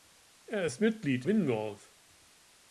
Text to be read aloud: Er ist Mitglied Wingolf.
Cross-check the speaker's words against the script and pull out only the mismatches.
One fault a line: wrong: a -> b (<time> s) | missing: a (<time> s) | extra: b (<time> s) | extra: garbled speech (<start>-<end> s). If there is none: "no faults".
no faults